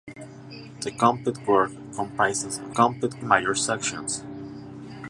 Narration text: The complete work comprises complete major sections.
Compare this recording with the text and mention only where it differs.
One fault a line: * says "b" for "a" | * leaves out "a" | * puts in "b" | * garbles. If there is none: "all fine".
all fine